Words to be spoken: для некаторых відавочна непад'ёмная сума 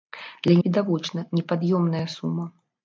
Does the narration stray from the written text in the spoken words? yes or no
yes